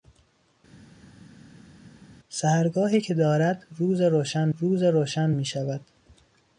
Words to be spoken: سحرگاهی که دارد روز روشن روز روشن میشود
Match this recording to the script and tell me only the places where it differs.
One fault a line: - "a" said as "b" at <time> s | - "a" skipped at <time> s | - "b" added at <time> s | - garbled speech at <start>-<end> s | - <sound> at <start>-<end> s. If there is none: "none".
none